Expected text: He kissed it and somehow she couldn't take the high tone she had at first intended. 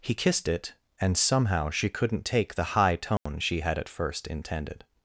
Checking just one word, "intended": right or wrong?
right